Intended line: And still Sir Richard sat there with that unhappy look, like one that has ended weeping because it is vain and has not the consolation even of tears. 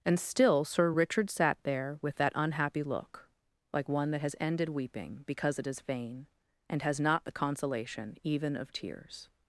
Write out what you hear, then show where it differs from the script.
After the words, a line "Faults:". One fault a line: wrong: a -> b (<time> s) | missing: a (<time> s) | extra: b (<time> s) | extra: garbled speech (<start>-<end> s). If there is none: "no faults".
And still Sir Richard sat there with that unhappy look, like one that has ended weeping because it is vain and has not the consolation even of tears.
Faults:
no faults